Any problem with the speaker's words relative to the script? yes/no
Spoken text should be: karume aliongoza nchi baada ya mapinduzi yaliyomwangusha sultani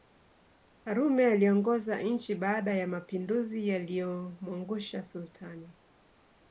no